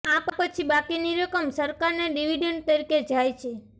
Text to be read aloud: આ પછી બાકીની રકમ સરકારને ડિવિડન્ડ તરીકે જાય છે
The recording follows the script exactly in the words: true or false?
true